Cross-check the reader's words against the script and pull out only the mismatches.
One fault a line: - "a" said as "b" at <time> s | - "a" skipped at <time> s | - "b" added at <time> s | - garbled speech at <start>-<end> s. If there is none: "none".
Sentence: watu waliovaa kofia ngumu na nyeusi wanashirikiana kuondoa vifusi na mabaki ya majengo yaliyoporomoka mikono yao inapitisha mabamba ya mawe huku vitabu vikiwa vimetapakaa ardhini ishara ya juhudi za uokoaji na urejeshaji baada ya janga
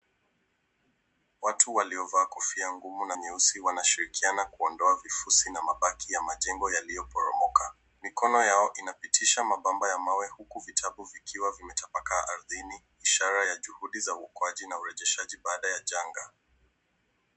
none